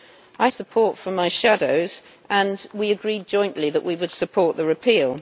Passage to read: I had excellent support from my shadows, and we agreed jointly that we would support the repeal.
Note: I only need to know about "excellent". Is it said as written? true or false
false